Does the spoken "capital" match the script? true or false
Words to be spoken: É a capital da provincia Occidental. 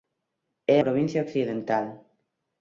false